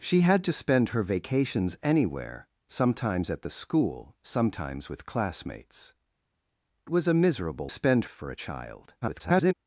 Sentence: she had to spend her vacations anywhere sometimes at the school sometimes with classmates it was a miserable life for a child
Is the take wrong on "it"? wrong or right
wrong